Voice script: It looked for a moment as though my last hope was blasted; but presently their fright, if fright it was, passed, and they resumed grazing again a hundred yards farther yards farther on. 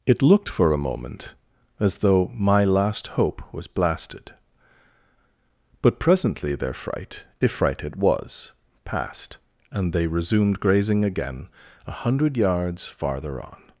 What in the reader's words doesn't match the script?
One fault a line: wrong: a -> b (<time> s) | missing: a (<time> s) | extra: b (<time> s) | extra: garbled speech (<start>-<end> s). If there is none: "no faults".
missing: yards farther (13.4 s)